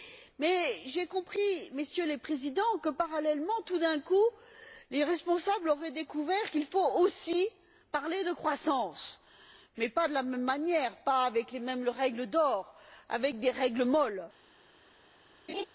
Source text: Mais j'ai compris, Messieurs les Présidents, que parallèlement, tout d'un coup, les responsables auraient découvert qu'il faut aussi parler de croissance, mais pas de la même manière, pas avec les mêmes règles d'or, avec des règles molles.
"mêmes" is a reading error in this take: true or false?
false